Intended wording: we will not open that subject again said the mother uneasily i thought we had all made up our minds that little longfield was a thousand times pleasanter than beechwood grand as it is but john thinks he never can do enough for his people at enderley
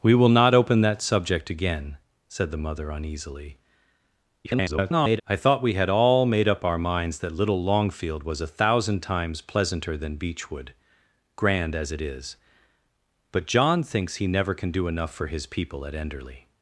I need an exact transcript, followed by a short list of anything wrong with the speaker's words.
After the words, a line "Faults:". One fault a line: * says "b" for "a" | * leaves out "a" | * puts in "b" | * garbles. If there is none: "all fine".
we will not open that subject again said the mother uneasily [garbled] i thought we had all made up our minds that little longfield was a thousand times pleasanter than beechwood grand as it is but john thinks he never can do enough for his people at enderley
Faults:
* garbles